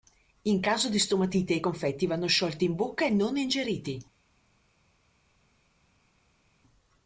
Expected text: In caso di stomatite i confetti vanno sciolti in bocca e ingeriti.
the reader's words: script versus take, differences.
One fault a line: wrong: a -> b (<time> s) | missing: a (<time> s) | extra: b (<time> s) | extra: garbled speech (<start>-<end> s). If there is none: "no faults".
extra: non (3.1 s)